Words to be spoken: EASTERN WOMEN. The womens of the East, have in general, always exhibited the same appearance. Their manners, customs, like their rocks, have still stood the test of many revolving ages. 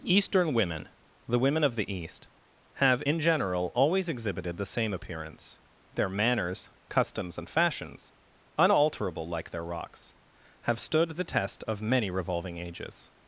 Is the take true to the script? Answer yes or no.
no